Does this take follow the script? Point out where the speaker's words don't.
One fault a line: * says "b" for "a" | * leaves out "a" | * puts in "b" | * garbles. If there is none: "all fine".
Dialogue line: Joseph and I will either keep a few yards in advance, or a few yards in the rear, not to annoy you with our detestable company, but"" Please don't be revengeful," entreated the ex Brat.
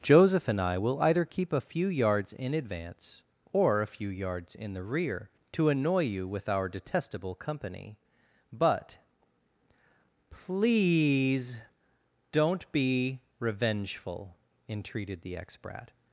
* leaves out "not"